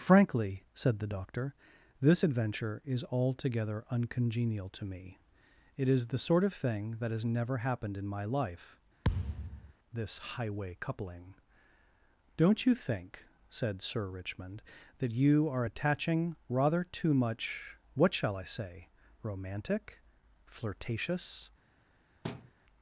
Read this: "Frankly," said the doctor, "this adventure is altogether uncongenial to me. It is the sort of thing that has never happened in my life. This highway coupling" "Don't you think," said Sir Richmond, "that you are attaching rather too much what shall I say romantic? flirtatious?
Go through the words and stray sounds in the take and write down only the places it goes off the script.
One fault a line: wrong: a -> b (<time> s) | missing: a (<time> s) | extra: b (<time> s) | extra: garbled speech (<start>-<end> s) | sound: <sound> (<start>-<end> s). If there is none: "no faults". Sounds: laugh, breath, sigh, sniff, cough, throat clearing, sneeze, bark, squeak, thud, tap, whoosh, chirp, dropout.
sound: thud (9.0-9.7 s)
sound: thud (22.2-22.5 s)